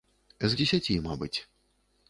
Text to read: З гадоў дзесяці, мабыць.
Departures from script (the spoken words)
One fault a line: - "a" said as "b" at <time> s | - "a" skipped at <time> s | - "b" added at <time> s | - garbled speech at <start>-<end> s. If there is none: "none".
- "гадоў" skipped at 0.6 s